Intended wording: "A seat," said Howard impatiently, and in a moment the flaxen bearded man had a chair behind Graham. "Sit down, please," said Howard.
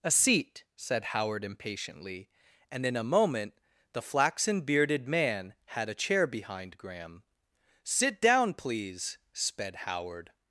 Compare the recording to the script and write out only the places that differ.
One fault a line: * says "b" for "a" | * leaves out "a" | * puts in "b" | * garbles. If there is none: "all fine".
* says "sped" for "said"